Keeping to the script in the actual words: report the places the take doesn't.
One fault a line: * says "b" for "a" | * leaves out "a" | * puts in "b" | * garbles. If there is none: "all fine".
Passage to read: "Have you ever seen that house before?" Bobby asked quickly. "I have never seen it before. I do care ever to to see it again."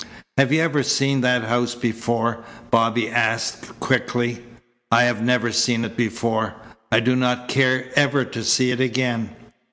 * puts in "not"
* leaves out "to"